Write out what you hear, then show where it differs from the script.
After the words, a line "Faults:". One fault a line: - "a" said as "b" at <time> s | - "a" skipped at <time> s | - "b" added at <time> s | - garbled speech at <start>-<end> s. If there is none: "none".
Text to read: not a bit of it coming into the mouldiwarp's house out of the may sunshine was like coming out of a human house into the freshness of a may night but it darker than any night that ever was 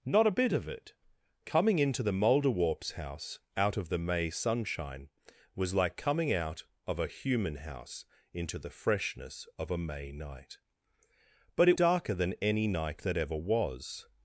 not a bit of it coming into the mouldiwarp's house out of the may sunshine was like coming out of a human house into the freshness of a may night but it darker than any night that ever was
Faults:
none